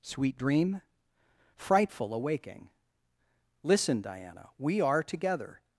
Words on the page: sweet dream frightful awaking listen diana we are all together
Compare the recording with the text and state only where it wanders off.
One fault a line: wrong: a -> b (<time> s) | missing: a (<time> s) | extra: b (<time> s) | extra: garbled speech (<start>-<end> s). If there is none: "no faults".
missing: all (5.0 s)